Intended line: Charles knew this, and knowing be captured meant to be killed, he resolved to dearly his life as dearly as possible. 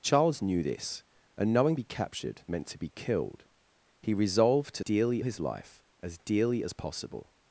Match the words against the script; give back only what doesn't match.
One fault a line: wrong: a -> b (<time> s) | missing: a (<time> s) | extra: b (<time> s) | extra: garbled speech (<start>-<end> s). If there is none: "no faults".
no faults